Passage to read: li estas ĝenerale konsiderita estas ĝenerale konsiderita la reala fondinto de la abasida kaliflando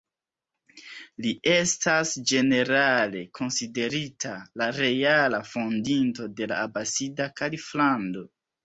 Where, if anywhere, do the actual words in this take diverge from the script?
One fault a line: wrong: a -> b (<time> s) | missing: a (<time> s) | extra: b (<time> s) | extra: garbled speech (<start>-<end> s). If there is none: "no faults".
missing: estas ĝenerale konsiderita (4.3 s)